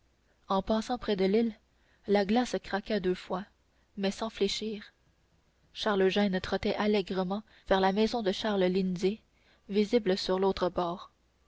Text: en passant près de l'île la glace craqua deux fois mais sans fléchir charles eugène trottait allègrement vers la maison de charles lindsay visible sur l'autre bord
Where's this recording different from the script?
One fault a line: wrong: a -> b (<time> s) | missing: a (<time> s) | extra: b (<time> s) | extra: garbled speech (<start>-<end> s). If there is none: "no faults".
no faults